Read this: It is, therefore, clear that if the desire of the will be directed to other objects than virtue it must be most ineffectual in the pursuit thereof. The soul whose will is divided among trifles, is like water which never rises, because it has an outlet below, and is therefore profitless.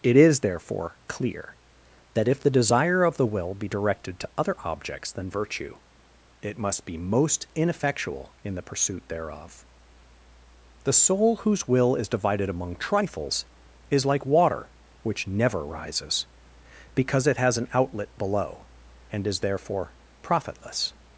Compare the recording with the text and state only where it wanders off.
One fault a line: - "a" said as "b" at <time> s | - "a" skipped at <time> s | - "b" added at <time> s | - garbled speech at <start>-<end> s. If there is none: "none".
none